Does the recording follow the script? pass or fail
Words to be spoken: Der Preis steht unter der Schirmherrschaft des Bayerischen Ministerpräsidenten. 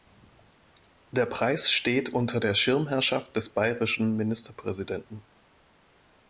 pass